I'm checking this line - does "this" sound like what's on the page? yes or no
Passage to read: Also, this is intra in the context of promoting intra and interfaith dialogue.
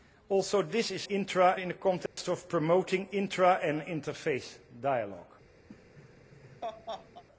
yes